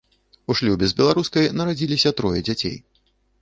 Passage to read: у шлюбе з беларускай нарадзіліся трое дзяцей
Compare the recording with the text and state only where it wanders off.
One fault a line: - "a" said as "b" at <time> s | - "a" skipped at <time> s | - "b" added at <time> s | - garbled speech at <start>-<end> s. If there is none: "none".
none